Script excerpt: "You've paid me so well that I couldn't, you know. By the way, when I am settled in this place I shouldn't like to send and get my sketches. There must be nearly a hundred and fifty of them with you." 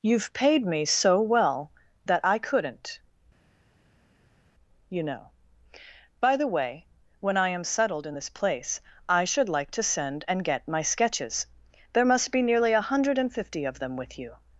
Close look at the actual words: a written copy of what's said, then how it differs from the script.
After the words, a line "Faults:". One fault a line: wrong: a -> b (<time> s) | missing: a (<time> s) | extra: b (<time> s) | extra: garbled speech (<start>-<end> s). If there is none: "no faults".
"You've paid me so well that I couldn't, you know. By the way, when I am settled in this place I should like to send and get my sketches. There must be nearly a hundred and fifty of them with you."
Faults:
wrong: shouldn't -> should (9.2 s)